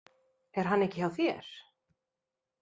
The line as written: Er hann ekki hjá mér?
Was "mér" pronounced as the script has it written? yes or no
no